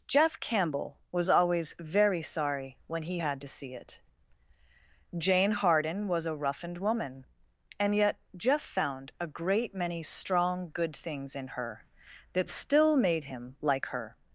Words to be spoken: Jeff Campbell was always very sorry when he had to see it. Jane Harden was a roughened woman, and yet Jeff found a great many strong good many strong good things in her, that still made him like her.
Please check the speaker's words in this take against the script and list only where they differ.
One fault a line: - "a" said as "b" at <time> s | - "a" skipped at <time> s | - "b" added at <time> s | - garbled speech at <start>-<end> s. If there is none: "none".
- "many strong good" skipped at 11.0 s